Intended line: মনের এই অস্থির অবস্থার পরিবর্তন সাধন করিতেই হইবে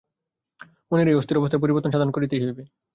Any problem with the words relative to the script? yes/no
no